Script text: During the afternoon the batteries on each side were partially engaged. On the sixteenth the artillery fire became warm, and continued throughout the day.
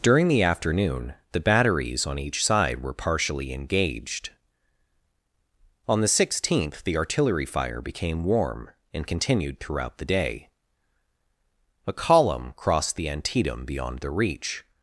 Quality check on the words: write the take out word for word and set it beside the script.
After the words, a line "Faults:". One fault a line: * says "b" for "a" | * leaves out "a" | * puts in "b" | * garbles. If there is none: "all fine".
During the afternoon the batteries on each side were partially engaged. On the sixteenth the artillery fire became warm, and continued throughout the day. A column crossed the Antietam beyond the reach
Faults:
* puts in "A column crossed the Antietam beyond the reach"